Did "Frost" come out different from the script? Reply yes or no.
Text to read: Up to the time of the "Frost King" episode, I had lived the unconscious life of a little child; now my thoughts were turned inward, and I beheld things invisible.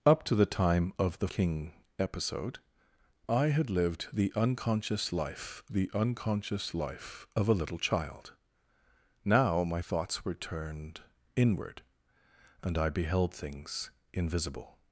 yes